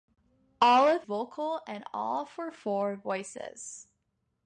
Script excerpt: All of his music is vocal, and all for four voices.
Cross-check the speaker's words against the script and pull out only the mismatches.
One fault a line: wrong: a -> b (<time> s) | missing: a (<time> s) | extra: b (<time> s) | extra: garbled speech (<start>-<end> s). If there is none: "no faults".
missing: his music is (1.0 s)